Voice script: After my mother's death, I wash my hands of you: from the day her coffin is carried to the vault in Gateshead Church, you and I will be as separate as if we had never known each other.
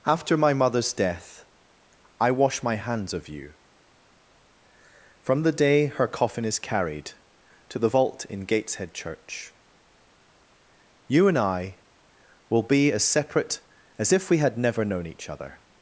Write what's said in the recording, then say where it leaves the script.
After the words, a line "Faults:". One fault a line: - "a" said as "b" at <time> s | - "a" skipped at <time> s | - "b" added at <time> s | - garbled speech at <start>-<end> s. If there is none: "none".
After my mother's death, I wash my hands of you: from the day her coffin is carried to the vault in Gateshead Church, you and I will be as separate as if we had never known each other.
Faults:
none